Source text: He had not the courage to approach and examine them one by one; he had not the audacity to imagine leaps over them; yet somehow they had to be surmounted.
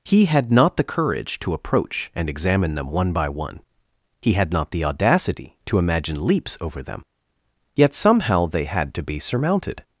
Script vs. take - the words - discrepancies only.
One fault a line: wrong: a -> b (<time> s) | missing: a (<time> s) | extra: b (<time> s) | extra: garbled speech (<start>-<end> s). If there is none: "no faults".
no faults